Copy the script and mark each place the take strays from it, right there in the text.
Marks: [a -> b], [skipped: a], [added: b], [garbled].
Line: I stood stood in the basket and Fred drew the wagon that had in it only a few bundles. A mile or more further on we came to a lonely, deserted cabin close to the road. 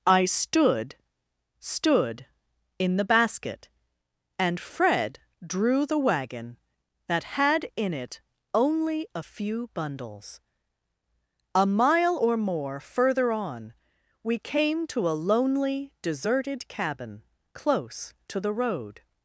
I stood stood in the basket and Fred drew the wagon that had in it only a few bundles. A mile or more further on we came to a lonely, deserted cabin close to the road.